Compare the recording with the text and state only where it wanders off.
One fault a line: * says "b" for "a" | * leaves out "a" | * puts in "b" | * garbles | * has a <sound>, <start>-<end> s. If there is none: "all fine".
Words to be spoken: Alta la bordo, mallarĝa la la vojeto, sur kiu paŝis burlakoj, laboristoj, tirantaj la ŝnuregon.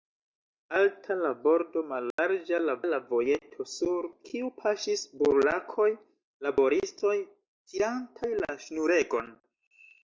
* has a dropout, 2.1-2.2 s